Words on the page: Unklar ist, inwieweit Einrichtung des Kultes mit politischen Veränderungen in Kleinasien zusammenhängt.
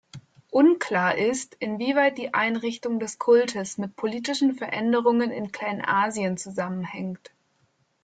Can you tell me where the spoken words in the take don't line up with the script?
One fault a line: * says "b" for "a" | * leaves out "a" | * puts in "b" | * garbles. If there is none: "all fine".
* puts in "die"